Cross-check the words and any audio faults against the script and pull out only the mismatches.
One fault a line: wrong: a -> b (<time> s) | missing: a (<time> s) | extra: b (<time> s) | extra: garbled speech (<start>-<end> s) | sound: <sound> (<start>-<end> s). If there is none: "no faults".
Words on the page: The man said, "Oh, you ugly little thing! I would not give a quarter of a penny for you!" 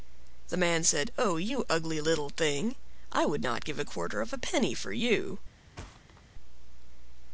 sound: thud (5.8-6.2 s)